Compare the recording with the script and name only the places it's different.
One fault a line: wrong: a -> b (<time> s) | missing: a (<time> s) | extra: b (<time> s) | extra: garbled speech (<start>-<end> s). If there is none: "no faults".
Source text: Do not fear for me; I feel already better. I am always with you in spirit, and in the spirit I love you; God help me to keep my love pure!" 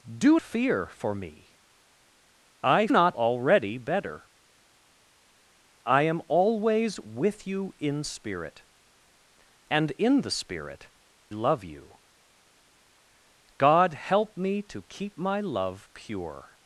missing: not (0.4 s)
wrong: feel -> not (2.9 s)
missing: I (10.9 s)